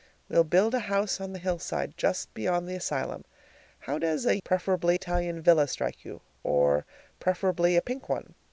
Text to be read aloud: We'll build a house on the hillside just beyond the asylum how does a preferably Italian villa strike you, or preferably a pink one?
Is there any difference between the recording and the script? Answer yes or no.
no